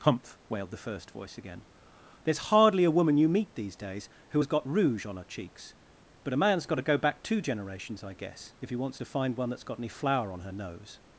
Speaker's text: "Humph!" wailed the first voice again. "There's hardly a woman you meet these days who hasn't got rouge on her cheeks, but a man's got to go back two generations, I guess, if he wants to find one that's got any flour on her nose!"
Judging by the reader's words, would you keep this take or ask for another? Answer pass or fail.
fail